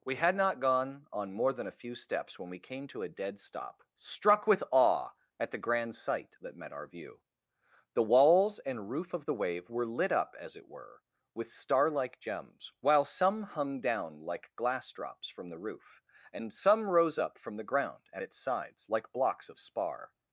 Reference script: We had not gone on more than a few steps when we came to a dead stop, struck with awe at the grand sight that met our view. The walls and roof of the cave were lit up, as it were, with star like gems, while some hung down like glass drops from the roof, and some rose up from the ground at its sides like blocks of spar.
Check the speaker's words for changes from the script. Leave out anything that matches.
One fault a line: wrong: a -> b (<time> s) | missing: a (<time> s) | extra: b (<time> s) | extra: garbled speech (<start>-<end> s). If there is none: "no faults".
wrong: cave -> wave (9.3 s)